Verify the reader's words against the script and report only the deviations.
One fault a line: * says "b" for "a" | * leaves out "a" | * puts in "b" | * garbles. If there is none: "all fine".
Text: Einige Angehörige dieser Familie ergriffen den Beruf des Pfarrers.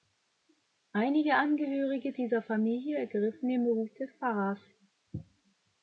all fine